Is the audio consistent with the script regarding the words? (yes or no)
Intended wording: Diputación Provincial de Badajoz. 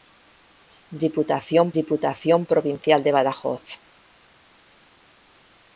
no